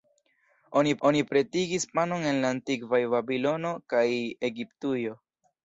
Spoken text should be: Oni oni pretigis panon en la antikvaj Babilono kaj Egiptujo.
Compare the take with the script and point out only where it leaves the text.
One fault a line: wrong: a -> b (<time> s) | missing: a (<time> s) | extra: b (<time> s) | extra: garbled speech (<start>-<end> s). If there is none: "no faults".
no faults